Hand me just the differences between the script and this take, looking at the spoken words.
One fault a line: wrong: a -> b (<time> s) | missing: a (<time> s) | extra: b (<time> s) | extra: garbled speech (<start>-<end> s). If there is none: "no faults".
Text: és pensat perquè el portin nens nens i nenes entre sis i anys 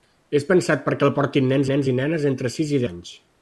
no faults